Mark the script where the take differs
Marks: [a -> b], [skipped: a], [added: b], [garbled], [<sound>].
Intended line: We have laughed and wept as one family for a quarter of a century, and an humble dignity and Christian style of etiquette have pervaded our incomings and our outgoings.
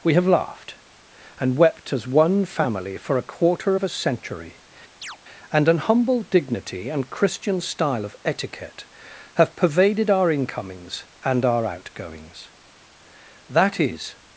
We have laughed and wept as one family for a quarter of a century, [chirp] and an humble dignity and Christian style of etiquette have pervaded our incomings and our outgoings. [added: That is]